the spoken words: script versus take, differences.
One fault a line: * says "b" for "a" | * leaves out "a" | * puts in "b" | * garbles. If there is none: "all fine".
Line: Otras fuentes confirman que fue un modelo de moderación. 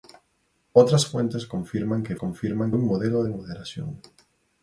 * says "confirman" for "fue"